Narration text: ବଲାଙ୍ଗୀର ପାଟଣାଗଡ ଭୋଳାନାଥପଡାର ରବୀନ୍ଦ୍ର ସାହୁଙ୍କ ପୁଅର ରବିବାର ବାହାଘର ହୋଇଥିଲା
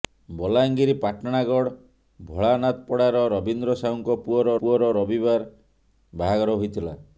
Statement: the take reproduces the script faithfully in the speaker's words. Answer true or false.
false